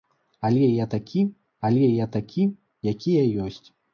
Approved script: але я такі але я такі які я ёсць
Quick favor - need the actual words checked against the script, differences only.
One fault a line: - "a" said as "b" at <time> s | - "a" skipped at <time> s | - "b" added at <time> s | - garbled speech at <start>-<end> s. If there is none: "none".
none